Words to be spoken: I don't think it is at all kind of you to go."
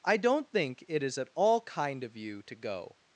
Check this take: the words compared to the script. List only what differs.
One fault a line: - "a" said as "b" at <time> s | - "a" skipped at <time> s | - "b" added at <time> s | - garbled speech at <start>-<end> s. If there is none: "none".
none